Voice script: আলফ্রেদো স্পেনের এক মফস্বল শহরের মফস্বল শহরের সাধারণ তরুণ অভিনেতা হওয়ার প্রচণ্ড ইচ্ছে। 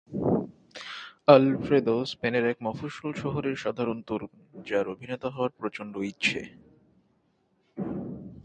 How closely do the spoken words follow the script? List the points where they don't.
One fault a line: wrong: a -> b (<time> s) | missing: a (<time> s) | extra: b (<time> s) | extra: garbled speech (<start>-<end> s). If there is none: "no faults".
missing: মফস্বল শহরের (3.5 s)
extra: যার (4.6 s)